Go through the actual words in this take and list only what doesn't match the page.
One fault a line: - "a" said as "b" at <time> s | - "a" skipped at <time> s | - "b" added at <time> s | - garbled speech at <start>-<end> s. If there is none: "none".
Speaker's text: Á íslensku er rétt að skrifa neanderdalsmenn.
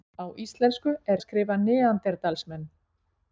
- "rétt" skipped at 1.2 s